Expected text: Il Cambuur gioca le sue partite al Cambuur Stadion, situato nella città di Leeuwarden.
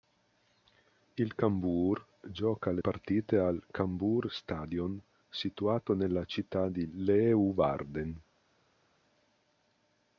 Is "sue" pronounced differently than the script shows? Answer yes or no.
yes